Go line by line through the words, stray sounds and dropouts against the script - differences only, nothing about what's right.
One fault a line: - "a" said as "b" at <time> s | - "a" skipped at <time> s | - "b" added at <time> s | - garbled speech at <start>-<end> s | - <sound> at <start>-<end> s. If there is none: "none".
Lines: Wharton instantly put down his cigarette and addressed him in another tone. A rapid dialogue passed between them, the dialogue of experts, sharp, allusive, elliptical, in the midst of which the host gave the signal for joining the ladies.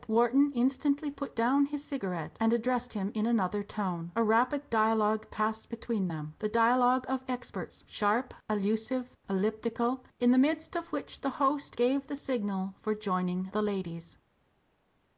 none